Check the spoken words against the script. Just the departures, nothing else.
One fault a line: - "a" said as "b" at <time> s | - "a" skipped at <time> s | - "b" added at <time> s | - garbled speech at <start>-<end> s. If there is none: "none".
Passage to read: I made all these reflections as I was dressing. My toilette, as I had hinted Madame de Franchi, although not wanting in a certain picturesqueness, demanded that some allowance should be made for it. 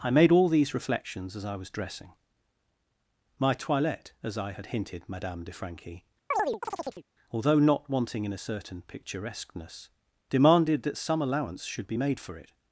none